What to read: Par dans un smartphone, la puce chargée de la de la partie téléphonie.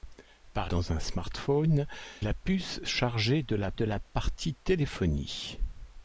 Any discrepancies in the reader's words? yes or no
no